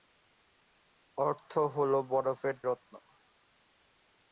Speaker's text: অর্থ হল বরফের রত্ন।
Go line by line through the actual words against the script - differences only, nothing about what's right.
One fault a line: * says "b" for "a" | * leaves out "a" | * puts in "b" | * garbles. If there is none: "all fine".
all fine